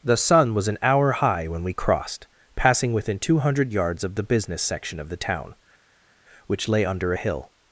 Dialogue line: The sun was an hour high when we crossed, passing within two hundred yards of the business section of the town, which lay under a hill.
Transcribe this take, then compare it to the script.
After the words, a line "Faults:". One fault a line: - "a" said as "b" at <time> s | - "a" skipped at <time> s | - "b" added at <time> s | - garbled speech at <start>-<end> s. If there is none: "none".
The sun was an hour high when we crossed, passing within two hundred yards of the business section of the town, which lay under a hill.
Faults:
none